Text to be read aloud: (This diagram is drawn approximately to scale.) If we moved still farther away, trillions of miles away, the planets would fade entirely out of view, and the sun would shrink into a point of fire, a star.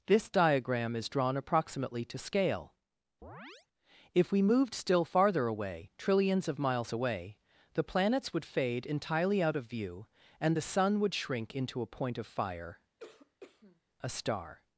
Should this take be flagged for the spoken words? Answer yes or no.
no